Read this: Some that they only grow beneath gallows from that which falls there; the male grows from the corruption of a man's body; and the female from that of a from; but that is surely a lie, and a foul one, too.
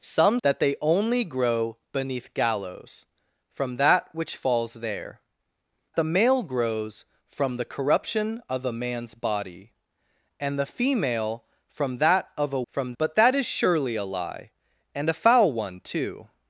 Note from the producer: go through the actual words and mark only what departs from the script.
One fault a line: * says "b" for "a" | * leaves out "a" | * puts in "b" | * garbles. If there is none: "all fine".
all fine